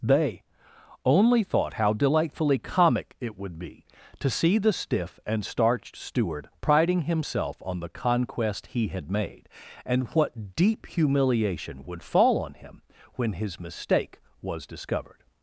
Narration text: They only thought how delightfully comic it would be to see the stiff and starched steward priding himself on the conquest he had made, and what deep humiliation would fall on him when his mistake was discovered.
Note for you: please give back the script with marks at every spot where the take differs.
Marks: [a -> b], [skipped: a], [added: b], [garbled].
They only thought how delightfully comic it would be to see the stiff and starched steward priding himself on the conquest he had made, and what deep humiliation would fall on him when his mistake was discovered.